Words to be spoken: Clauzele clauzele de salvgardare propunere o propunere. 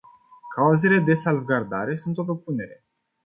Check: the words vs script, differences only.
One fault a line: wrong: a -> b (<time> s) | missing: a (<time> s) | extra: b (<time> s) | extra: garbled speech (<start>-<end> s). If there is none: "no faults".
missing: clauzele (1.0 s)
wrong: propunere -> sunt (1.9 s)